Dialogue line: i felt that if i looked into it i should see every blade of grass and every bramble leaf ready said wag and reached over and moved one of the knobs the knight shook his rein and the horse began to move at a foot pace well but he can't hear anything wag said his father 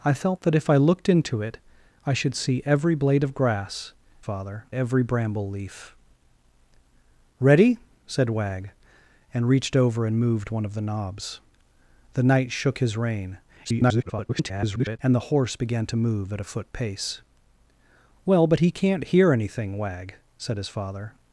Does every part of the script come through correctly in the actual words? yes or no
no